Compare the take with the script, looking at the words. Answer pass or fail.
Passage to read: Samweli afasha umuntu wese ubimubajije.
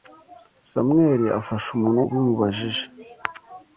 fail